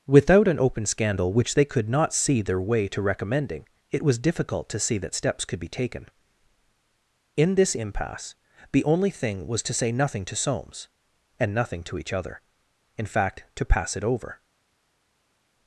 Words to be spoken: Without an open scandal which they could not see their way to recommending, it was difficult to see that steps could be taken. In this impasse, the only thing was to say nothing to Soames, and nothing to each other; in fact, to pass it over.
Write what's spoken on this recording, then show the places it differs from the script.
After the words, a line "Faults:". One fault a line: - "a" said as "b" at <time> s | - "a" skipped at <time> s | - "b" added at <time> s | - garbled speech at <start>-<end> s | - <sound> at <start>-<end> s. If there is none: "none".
Without an open scandal which they could not see their way to recommending, it was difficult to see that steps could be taken. In this impasse, the only thing was to say nothing to Soames, and nothing to each other; in fact, to pass it over.
Faults:
none